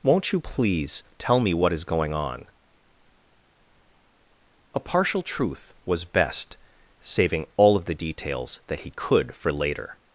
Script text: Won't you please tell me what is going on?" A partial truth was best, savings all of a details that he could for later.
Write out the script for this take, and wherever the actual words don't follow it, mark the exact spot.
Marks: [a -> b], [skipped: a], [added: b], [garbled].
Won't you please tell me what is going on?" A partial truth was best, [savings -> saving] all of [a -> the] details that he could for later.